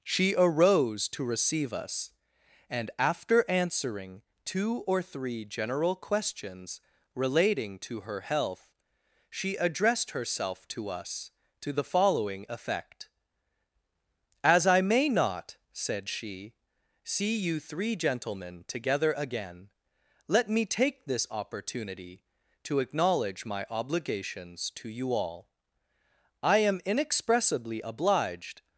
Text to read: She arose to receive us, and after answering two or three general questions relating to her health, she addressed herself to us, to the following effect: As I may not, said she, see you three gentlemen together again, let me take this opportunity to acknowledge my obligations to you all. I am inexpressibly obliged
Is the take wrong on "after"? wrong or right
right